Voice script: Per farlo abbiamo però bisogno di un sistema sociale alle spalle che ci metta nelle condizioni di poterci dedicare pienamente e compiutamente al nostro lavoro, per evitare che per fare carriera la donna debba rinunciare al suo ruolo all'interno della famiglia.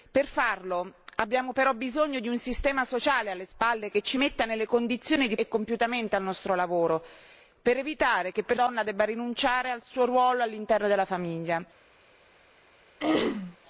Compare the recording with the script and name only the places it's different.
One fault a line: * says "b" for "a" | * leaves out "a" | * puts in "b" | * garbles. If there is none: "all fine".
* leaves out "poterci dedicare pienamente"
* leaves out "fare carriera la"